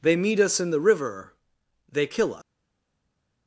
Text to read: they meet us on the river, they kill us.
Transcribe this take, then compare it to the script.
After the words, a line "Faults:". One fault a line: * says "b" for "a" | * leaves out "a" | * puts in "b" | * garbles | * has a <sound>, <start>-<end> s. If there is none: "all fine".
they meet us in the river, they kill us.
Faults:
* says "in" for "on"